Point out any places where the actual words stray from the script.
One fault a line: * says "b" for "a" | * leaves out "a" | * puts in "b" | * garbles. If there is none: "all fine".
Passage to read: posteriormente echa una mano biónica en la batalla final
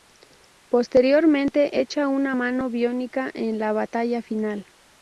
all fine